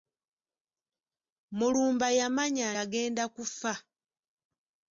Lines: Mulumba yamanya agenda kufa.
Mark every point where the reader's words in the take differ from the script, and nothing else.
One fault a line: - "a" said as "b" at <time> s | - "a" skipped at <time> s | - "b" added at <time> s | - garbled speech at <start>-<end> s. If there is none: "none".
none